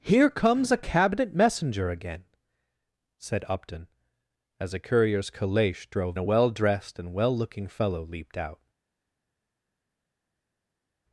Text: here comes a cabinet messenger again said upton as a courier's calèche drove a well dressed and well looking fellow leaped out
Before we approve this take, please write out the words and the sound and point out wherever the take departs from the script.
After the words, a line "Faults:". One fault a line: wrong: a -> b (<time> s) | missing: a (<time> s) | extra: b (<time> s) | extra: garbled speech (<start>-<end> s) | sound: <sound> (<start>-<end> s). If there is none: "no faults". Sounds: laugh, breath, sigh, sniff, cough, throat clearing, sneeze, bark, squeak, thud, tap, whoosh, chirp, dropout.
here comes a cabinet messenger again said upton as a courier's calèche drove a well dressed and well looking fellow leaped out
Faults:
no faults